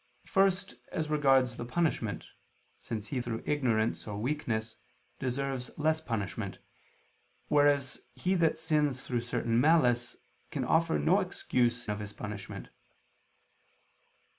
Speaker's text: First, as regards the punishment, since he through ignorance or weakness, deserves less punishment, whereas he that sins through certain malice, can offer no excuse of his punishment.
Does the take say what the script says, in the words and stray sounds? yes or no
yes